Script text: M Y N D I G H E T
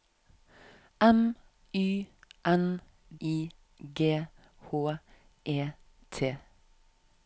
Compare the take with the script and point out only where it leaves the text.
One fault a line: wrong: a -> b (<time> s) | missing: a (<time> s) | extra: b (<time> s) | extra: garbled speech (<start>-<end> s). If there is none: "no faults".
missing: D (2.8 s)